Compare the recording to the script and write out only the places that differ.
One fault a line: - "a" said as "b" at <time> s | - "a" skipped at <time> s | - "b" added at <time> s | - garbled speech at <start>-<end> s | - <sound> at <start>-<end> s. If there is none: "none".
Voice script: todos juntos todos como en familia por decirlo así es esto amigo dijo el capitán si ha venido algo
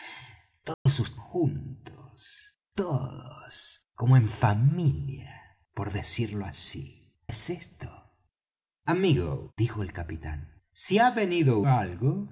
- dropout at 0.7-0.9 s